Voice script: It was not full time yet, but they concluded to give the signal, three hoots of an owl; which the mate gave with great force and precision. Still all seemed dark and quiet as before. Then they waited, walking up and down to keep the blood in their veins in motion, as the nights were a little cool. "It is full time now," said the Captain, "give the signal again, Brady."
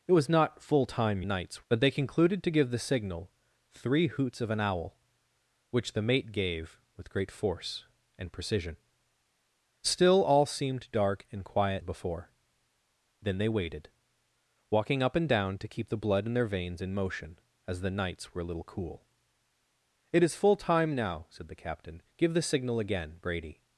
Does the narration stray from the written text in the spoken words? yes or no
yes